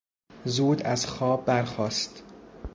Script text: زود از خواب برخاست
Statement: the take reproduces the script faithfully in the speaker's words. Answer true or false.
true